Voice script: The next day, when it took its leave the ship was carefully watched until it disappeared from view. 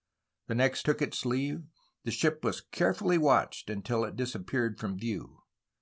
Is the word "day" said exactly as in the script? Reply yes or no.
no